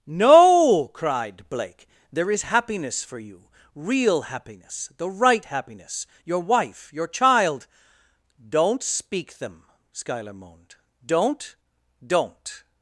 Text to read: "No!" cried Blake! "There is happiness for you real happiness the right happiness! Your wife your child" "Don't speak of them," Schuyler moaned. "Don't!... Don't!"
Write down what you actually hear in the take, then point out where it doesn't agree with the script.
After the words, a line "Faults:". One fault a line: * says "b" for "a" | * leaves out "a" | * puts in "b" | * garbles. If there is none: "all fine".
"No!" cried Blake! "There is happiness for you real happiness the right happiness! Your wife your child" "Don't speak them," Schuyler moaned. "Don't!... Don't!"
Faults:
* leaves out "of"